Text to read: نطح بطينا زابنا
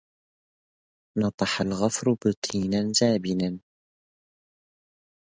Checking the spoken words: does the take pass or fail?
fail